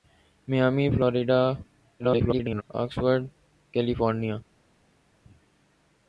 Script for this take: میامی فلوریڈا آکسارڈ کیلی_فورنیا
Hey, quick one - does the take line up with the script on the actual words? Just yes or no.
no